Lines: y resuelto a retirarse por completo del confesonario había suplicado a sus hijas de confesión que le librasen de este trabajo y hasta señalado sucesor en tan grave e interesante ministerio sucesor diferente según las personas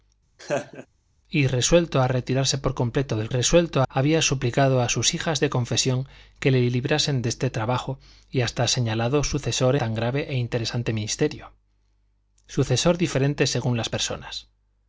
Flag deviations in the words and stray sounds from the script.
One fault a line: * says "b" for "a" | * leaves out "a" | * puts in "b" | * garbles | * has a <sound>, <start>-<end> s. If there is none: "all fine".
* has a laugh, 0.4-0.9 s
* says "resuelto" for "confesonario"
* leaves out "en"